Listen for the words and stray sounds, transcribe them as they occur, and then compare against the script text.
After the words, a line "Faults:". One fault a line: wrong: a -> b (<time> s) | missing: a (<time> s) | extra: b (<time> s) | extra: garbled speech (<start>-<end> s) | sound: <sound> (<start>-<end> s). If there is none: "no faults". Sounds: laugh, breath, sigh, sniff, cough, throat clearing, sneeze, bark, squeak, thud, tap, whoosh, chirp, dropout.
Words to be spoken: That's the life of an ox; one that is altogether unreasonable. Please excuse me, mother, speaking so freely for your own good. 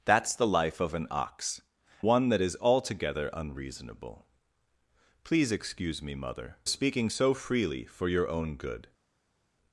That's the life of an ox; one that is altogether unreasonable. Please excuse me, mother, speaking so freely for your own good.
Faults:
no faults